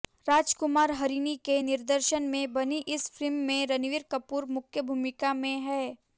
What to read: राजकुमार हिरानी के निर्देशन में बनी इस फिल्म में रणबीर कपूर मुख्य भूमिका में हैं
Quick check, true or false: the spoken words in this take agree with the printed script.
true